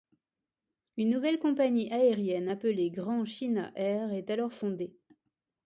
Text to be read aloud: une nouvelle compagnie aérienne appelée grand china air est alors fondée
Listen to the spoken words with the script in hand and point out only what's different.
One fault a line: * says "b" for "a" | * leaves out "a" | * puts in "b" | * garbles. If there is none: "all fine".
all fine